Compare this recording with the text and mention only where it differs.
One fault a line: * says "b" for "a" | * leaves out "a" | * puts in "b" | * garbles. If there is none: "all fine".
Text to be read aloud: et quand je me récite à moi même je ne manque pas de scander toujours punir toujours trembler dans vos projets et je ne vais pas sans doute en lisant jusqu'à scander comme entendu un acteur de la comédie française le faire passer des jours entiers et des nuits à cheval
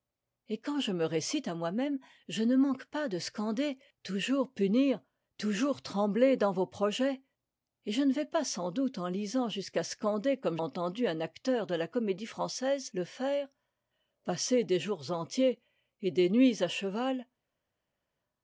all fine